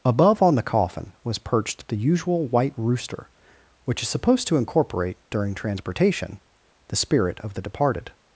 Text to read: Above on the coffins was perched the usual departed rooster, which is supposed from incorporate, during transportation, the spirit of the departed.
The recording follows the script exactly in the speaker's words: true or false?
false